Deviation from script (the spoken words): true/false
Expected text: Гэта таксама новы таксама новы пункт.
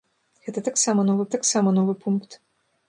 false